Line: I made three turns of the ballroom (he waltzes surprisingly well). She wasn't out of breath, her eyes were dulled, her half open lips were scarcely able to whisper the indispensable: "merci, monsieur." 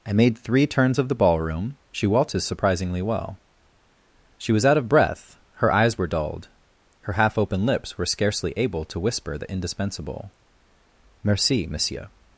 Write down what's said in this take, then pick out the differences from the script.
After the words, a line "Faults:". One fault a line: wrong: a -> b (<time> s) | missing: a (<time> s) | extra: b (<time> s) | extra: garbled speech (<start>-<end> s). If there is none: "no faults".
I made three turns of the ballroom (she waltzes surprisingly well). She was out of breath, her eyes were dulled, her half open lips were scarcely able to whisper the indispensable: "merci, monsieur."
Faults:
wrong: he -> she (1.9 s)
wrong: wasn't -> was (4.5 s)